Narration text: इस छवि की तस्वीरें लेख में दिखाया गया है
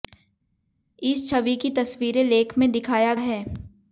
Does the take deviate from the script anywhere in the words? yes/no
yes